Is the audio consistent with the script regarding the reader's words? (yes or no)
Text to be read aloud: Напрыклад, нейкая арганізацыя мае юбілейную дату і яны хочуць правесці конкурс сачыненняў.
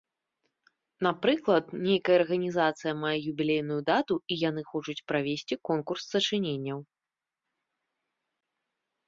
yes